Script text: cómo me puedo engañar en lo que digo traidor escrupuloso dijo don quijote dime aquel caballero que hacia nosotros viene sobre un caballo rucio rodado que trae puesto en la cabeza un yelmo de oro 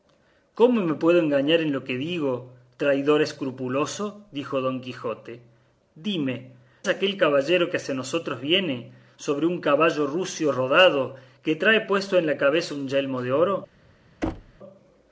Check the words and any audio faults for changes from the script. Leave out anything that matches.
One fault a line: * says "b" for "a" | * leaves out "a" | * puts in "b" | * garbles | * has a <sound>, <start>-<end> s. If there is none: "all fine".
* has a thud, 14.2-14.6 s